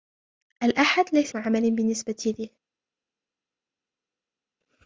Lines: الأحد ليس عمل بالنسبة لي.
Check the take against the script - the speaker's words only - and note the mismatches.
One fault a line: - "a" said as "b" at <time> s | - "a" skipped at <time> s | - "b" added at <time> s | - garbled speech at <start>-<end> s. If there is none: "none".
none